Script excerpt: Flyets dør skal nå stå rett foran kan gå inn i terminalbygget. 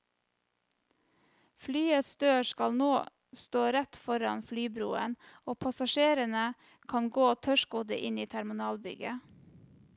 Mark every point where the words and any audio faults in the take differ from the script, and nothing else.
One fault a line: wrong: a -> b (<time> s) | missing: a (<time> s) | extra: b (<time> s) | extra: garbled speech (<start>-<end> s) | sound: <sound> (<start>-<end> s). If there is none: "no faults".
extra: flybroen og passasjerene (4.5 s)
extra: tørrskodde (7.4 s)